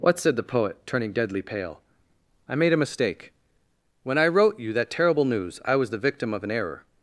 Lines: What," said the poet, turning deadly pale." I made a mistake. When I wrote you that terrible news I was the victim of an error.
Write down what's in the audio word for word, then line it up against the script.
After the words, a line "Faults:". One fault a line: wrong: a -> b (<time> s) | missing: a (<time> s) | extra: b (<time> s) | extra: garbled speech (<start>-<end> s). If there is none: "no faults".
What," said the poet, turning deadly pale." I made a mistake. When I wrote you that terrible news I was the victim of an error.
Faults:
no faults